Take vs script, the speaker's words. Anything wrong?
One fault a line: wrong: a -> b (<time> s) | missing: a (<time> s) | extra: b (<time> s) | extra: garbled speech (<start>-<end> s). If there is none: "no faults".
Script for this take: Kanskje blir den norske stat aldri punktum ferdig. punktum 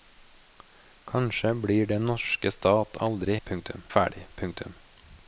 no faults